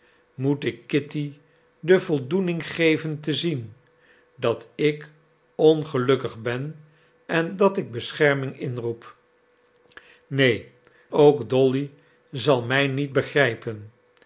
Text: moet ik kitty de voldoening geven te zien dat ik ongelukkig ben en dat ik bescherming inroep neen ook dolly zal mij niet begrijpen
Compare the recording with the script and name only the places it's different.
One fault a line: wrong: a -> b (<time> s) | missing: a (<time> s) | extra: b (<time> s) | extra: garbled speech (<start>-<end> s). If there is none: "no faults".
no faults